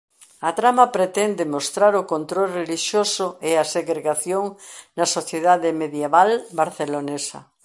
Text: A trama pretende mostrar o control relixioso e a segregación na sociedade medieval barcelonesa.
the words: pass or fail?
pass